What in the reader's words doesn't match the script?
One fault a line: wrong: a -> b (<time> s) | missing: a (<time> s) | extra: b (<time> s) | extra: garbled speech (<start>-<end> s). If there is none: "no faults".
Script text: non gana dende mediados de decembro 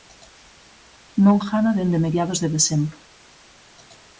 no faults